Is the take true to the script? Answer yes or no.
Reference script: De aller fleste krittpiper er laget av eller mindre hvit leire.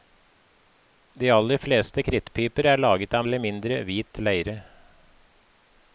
yes